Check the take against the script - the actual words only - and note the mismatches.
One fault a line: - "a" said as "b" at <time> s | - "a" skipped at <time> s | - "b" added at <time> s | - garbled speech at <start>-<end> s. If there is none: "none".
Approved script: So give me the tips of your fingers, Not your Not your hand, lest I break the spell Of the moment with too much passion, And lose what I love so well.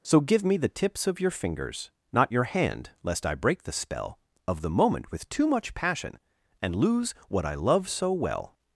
- "Not your" skipped at 2.4 s